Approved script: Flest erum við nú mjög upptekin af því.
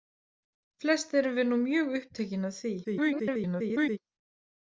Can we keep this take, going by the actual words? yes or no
no